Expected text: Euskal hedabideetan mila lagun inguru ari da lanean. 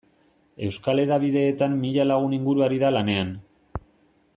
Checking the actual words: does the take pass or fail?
pass